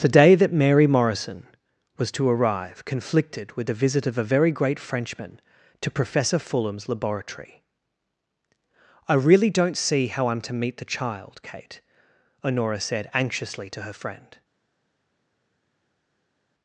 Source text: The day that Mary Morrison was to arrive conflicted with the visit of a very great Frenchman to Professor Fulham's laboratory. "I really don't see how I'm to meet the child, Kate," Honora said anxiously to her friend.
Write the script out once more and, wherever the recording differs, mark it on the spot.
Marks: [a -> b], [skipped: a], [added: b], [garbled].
The day that Mary Morrison was to arrive conflicted with the visit of a very great Frenchman to Professor Fulham's laboratory. "I really don't see how I'm to meet the child, Kate," Honora said anxiously to her friend.